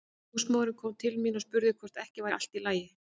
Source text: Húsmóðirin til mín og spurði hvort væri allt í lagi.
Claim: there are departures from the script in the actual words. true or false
true